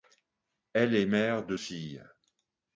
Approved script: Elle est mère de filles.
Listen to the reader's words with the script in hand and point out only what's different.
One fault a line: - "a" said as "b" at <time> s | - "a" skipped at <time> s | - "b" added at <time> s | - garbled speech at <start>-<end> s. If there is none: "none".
none